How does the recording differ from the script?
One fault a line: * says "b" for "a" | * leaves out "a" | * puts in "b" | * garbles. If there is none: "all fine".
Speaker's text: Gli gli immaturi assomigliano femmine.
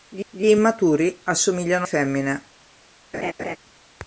all fine